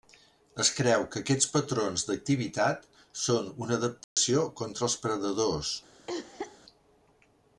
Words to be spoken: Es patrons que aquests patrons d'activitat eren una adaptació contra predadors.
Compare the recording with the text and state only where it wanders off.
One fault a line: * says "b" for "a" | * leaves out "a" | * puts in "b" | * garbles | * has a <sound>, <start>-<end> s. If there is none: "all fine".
* says "creu" for "patrons"
* says "són" for "eren"
* has a dropout, 4.0-4.2 s
* puts in "els"
* has a cough, 6.1-6.6 s